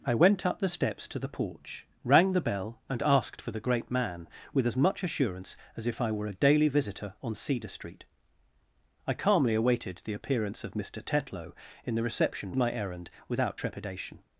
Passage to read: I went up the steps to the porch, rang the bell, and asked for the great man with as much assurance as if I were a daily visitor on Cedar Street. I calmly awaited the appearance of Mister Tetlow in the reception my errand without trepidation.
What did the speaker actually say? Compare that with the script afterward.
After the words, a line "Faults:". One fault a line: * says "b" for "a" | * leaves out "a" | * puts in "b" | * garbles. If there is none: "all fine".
I went up the steps to the porch, rang the bell, and asked for the great man with as much assurance as if I were a daily visitor on Cedar Street. I calmly awaited the appearance of Mister Tetlow in the reception my errand without trepidation.
Faults:
all fine